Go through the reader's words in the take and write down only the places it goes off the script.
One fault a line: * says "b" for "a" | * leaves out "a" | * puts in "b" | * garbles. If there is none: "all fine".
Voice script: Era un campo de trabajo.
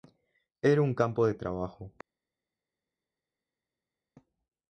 all fine